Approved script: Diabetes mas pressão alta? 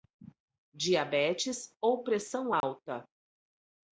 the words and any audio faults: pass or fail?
fail